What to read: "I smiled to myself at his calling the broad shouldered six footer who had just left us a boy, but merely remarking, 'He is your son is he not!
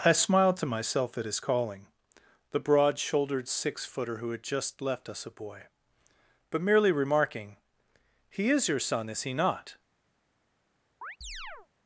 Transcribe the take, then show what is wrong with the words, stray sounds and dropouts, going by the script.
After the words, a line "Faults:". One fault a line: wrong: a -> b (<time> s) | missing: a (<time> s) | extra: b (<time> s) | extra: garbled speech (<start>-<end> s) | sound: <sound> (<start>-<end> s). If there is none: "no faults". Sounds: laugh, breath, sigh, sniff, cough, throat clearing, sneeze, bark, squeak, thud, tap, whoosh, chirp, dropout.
"I smiled to myself at his calling the broad shouldered six footer who had just left us a boy, but merely remarking, 'He is your son is he not!
Faults:
sound: chirp (11.0-11.7 s)